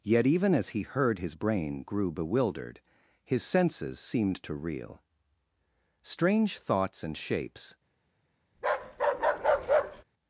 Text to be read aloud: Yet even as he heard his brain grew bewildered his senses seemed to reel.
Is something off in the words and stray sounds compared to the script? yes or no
yes